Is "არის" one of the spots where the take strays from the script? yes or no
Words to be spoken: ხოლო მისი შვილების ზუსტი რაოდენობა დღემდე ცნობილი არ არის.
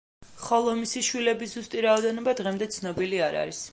no